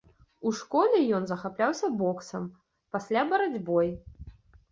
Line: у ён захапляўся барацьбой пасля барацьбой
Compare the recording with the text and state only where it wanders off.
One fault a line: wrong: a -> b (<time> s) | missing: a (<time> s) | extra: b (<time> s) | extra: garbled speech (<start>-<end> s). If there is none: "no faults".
extra: школе (0.6 s)
wrong: барацьбой -> боксам (2.0 s)